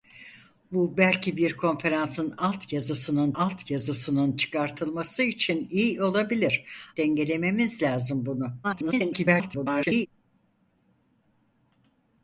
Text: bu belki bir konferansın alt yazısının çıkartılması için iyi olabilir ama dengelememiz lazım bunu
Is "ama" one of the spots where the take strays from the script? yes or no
yes